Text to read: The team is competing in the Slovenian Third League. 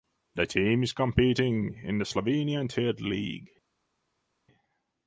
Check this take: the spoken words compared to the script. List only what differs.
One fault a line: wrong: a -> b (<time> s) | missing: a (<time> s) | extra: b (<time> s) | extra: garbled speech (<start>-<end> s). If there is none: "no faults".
no faults